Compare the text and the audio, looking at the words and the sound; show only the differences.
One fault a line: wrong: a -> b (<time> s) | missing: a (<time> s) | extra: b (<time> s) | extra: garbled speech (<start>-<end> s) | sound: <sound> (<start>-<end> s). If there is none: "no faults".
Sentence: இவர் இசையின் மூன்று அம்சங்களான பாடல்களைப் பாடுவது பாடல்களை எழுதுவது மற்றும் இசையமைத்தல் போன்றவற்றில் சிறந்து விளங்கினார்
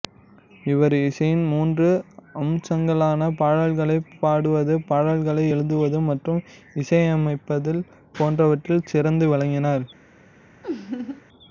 sound: laugh (10.6-11.2 s)